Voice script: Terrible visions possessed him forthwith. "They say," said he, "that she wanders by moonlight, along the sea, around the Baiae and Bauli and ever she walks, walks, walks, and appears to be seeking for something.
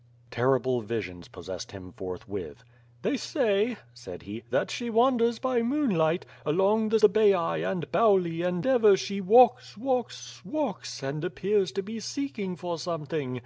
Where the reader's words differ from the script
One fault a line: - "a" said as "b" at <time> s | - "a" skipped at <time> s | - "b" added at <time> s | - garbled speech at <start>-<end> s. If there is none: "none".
- "sea around" skipped at 7.0 s